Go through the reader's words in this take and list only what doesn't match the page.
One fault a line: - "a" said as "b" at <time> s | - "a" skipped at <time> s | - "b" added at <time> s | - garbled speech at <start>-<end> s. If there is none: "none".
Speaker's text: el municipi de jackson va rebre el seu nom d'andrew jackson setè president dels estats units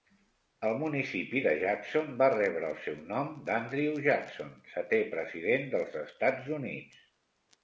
none